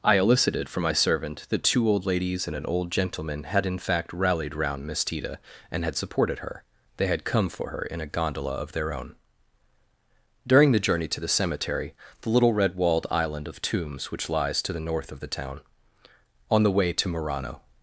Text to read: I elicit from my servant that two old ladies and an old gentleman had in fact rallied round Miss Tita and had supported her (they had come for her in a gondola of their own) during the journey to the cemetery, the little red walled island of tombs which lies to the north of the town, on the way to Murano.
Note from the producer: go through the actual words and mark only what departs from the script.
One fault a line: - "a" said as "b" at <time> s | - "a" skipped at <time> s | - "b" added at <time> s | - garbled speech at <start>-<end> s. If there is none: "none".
- "elicit" said as "elicited" at 0.2 s